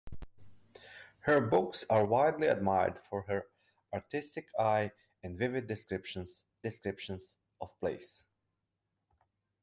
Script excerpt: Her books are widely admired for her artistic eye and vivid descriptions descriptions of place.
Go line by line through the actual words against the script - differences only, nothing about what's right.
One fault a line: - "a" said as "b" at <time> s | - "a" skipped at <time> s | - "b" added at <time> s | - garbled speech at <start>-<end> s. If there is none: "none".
none